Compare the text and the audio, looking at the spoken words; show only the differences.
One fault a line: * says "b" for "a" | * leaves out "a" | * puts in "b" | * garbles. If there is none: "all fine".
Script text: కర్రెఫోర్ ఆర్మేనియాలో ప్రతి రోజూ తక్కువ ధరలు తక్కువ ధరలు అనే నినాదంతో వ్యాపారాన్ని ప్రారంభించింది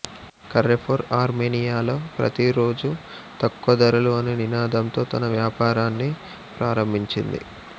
* leaves out "తక్కువ ధరలు"
* puts in "తన"